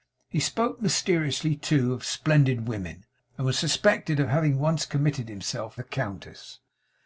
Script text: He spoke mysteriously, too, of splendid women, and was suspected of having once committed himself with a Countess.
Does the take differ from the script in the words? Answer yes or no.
yes